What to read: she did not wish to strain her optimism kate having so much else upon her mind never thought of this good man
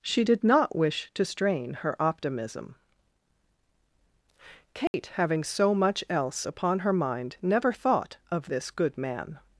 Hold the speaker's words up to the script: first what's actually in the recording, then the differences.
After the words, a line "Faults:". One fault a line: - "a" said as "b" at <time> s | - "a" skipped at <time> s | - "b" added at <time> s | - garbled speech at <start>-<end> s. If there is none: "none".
she did not wish to strain her optimism kate having so much else upon her mind never thought of this good man
Faults:
none